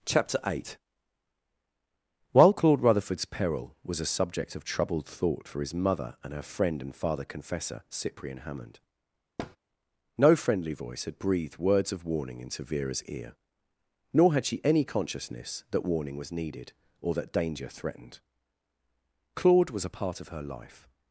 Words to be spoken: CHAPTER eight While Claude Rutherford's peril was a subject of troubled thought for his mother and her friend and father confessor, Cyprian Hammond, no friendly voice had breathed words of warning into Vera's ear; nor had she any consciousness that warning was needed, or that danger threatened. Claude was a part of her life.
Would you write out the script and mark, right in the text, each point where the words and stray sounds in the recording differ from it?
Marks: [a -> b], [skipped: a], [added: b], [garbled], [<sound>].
CHAPTER eight While Claude Rutherford's peril was a subject of troubled thought for his mother and her friend and father confessor, Cyprian Hammond, [thud] no friendly voice had breathed words of warning into Vera's ear; nor had she any consciousness that warning was needed, or that danger threatened. Claude was a part of her life.